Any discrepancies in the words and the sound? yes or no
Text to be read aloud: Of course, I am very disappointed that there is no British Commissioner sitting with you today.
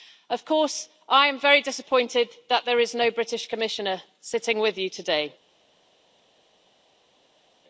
no